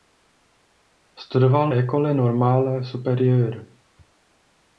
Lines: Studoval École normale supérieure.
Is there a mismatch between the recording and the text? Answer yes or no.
no